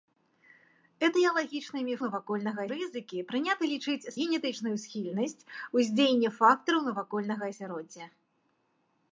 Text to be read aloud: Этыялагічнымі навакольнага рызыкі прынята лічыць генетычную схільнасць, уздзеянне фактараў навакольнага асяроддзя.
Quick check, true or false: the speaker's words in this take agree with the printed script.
true